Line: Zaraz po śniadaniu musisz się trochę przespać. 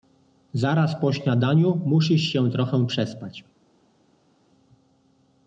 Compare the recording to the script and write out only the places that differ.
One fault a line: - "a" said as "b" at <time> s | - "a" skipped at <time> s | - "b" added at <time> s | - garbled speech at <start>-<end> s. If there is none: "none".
none